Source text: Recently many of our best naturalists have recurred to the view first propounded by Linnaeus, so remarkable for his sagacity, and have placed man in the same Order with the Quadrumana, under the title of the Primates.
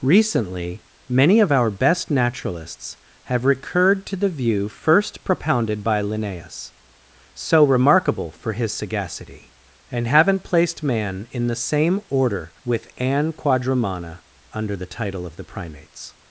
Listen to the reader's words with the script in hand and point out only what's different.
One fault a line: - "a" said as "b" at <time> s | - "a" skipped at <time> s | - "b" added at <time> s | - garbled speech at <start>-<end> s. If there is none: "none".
- "have" said as "haven't" at 10.1 s
- "the" said as "an" at 13.0 s